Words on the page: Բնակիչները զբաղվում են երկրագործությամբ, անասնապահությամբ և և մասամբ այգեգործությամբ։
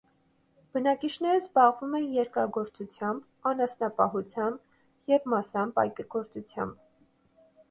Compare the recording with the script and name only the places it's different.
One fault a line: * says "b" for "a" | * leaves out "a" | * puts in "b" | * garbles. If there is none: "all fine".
* leaves out "և"